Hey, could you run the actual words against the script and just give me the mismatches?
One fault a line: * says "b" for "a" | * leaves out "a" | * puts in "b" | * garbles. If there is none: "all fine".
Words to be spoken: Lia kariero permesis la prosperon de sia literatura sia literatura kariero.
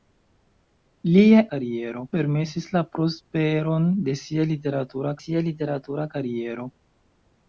all fine